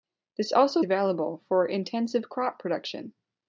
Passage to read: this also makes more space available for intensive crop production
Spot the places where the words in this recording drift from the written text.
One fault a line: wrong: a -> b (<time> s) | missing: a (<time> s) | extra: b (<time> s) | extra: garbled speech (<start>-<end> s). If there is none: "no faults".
missing: makes more space (0.8 s)